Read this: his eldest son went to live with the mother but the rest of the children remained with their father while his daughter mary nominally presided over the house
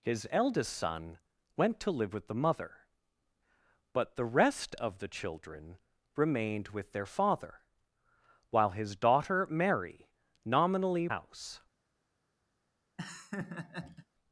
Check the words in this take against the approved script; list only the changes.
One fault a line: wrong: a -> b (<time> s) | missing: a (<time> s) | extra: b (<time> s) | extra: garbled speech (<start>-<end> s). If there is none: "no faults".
missing: presided over the (11.1 s)